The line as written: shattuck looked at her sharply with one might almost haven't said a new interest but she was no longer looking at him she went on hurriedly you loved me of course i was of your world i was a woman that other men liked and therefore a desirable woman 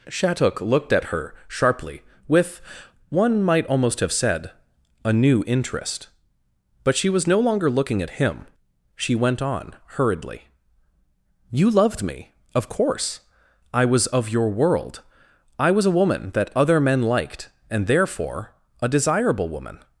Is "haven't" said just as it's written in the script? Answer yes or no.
no